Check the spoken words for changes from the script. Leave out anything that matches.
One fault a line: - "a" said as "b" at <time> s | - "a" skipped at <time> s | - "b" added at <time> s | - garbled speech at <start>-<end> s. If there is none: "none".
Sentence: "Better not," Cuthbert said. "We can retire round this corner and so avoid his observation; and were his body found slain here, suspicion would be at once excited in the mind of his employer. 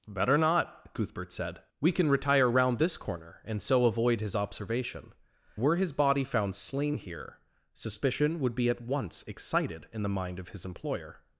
- "and" skipped at 5.1 s